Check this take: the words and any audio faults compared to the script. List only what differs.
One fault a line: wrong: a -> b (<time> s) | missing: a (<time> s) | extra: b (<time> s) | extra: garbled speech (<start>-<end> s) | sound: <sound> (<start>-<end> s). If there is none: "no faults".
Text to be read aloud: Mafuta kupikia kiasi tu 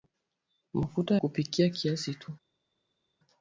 no faults